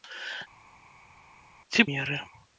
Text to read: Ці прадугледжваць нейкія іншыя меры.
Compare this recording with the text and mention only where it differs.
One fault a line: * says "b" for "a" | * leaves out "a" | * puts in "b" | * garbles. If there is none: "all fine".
* leaves out "прадугледжваць нейкія іншыя"